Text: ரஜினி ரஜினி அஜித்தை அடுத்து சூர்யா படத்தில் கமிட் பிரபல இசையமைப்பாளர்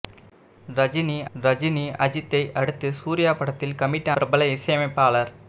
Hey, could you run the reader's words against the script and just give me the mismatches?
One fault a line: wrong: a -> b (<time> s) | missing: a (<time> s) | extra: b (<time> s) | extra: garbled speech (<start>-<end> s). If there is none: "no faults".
no faults